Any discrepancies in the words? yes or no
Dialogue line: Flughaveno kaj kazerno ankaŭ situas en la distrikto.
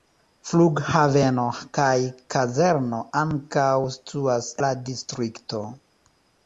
yes